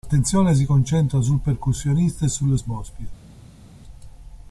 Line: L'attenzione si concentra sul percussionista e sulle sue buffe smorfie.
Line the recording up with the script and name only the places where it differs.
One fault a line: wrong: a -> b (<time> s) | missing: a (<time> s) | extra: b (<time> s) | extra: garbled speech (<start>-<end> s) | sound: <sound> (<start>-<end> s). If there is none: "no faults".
missing: sue buffe (2.6 s)